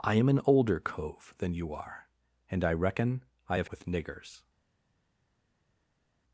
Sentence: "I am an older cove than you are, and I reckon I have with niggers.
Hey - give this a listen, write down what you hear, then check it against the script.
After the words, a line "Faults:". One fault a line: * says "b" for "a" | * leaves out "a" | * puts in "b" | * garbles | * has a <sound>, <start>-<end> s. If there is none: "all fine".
"I am an older cove than you are, and I reckon I have with niggers.
Faults:
all fine